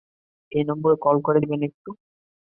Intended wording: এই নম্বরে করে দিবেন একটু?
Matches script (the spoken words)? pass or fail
fail